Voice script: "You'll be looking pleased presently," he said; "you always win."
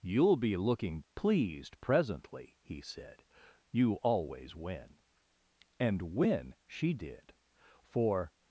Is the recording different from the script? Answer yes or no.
yes